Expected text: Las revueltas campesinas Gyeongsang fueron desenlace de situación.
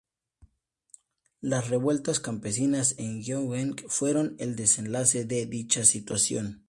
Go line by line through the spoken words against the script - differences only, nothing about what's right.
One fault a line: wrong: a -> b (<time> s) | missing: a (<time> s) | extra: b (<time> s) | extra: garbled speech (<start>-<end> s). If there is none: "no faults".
extra: en (3.0 s)
extra: el (4.4 s)
extra: dicha (5.5 s)